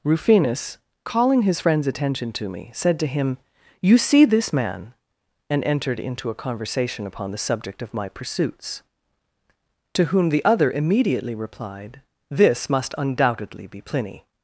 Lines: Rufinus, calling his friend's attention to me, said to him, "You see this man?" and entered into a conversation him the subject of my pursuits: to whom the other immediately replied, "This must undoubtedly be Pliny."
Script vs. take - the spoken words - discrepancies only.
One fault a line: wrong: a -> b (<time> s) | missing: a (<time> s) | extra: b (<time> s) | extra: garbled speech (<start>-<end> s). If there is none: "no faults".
wrong: him -> upon (7.1 s)